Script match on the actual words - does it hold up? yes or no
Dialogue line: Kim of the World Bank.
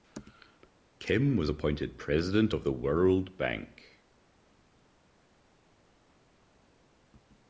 no